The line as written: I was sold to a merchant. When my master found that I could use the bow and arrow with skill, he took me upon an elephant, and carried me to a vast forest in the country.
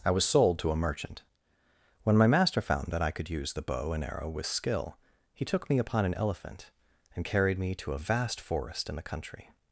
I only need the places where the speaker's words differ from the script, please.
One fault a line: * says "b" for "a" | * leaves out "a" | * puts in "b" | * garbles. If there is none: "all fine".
all fine